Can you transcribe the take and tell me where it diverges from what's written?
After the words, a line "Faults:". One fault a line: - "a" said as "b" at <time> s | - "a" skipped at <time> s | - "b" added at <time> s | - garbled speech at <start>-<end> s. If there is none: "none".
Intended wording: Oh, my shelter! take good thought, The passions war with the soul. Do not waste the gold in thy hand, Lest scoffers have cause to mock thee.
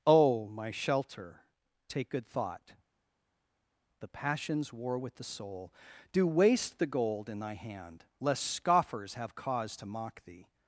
Oh, my shelter! take good thought, The passions war with the soul. Do waste the gold in thy hand, Lest scoffers have cause to mock thee.
Faults:
- "not" skipped at 6.3 s